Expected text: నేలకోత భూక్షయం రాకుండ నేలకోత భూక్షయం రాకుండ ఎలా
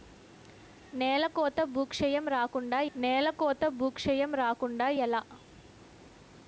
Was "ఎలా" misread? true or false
false